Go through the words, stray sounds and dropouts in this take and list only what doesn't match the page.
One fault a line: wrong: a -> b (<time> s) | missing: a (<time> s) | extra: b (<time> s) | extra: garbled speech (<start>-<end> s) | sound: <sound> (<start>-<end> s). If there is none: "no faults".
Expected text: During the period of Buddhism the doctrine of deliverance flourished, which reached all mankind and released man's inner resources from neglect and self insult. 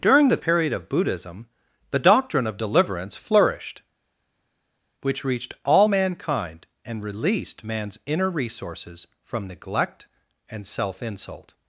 no faults